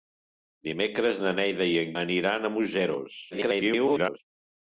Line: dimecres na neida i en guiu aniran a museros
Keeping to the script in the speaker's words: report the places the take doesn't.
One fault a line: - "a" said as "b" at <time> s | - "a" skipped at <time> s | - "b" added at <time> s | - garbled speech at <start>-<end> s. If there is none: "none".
- "guiu" skipped at 1.9 s
- garbled speech at 3.3-4.2 s